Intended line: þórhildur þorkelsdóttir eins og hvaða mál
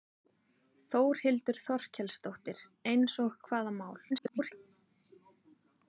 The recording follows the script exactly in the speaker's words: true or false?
false